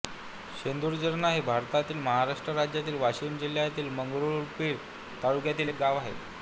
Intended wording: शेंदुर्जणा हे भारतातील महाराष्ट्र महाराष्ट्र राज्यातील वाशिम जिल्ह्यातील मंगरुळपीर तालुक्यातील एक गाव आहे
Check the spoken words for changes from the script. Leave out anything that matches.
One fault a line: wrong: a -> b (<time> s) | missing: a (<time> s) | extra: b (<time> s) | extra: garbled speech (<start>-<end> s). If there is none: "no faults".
missing: महाराष्ट्र (2.5 s)